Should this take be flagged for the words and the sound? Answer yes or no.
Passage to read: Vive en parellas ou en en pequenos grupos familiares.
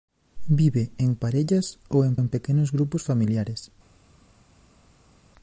no